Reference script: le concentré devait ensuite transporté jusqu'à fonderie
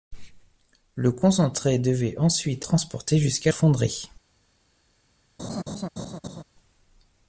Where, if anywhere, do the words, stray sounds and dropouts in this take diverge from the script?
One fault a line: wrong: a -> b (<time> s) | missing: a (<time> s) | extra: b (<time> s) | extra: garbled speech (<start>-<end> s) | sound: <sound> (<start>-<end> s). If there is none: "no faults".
sound: laugh (5.4-6.4 s)